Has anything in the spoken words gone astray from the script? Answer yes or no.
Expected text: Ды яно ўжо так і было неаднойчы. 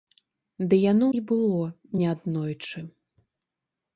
yes